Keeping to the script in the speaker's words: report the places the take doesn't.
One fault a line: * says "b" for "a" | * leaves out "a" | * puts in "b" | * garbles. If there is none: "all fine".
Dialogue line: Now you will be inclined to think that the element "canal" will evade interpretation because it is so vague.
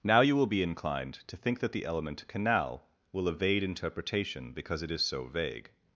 all fine